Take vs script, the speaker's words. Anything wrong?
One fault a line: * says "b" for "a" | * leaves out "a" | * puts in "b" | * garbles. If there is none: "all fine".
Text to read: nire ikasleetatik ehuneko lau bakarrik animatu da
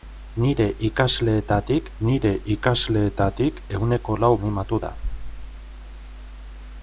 * puts in "nire ikasleetatik"
* leaves out "bakarrik"